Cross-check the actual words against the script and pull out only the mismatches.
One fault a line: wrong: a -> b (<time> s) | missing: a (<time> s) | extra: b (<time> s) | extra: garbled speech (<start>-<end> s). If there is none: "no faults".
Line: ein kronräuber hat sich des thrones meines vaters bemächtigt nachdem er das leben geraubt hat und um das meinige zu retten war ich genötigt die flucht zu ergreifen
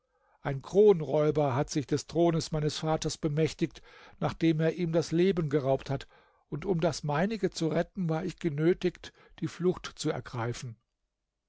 extra: ihm (4.8 s)